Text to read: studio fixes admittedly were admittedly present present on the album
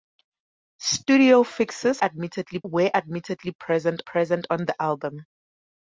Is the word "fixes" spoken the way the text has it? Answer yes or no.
yes